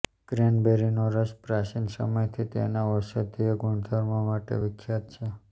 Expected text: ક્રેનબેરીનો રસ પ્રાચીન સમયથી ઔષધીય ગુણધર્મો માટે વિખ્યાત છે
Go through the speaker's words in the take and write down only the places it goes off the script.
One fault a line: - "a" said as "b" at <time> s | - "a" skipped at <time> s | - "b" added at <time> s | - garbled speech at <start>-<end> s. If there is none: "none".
- "તેના" added at 2.5 s